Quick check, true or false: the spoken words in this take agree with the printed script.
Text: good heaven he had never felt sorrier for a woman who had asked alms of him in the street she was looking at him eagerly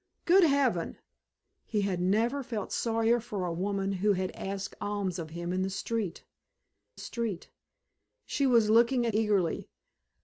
false